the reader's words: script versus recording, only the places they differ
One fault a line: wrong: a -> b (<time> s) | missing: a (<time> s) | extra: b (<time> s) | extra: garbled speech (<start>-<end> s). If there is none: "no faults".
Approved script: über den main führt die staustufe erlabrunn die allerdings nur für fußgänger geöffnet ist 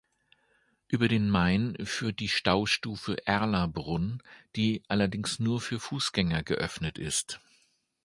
no faults